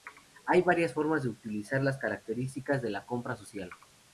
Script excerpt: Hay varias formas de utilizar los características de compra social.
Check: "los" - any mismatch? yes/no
yes